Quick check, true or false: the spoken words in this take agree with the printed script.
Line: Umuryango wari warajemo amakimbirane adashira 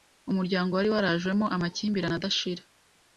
true